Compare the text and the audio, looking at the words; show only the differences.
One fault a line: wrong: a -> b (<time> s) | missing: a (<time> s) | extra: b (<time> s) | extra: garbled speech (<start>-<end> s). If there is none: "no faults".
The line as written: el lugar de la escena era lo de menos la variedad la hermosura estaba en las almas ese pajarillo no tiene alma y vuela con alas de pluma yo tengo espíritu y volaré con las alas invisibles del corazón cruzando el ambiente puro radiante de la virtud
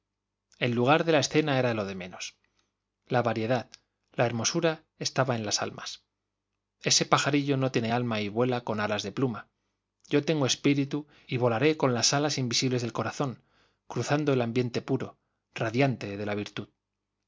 no faults